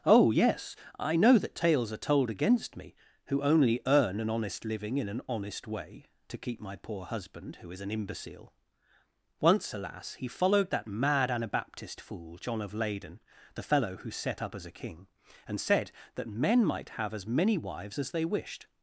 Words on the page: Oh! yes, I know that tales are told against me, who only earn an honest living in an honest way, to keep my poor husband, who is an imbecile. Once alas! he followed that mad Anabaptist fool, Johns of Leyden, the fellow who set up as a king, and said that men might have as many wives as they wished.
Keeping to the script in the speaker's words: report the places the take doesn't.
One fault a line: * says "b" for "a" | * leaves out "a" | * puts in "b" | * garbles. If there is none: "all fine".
* says "John" for "Johns"